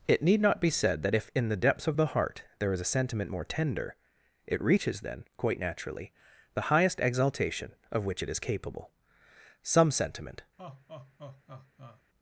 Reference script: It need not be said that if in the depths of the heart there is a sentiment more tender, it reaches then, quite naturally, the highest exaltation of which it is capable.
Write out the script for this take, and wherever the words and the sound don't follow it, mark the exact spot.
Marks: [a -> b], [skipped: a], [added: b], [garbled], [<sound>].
It need not be said that if in the depths of the heart there is a sentiment more tender, it reaches then, quite naturally, the highest exaltation of which it is capable. [added: Some sentiment] [laugh]